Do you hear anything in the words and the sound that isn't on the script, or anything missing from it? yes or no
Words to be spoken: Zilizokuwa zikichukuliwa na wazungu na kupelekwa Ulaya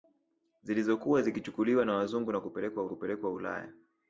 yes